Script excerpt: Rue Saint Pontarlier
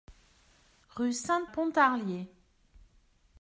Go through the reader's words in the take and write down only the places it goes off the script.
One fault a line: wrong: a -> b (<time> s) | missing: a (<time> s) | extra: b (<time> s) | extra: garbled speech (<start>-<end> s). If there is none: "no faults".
no faults